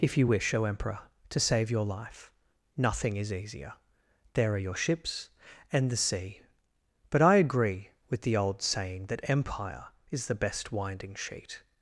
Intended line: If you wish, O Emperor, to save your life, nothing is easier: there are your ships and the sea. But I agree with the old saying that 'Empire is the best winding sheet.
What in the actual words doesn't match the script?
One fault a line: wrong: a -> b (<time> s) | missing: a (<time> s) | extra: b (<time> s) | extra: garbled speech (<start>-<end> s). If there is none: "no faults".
no faults